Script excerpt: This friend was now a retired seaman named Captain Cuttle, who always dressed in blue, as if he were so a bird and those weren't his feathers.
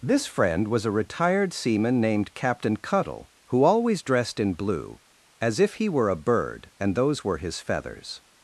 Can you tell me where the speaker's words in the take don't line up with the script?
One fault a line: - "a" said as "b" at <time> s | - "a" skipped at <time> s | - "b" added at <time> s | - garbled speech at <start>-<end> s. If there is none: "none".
- "now" skipped at 0.8 s
- "so" skipped at 6.1 s
- "weren't" said as "were" at 7.2 s